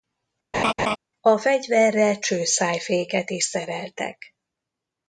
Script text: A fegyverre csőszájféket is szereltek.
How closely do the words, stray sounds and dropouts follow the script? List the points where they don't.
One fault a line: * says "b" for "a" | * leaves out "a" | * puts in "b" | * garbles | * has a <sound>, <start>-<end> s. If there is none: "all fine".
* has a laugh, 0.5-1.0 s